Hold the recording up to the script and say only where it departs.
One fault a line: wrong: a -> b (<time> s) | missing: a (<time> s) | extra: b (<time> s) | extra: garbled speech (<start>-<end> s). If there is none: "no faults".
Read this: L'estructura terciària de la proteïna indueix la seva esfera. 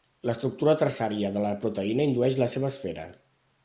no faults